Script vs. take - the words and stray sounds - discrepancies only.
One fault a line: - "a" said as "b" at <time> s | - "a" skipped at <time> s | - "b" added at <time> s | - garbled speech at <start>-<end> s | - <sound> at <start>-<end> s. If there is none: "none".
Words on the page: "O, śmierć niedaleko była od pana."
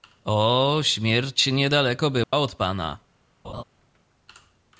- dropout at 2.2-2.3 s
- laugh at 3.4-3.6 s